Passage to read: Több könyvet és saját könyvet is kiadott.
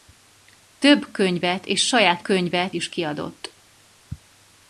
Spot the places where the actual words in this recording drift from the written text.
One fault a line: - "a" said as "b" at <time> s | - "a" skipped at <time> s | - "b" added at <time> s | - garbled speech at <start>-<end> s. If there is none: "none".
none